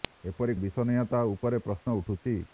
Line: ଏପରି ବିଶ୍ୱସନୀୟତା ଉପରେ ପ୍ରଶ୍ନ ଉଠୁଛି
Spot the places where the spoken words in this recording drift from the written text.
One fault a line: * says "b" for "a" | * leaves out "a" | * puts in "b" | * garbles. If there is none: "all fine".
all fine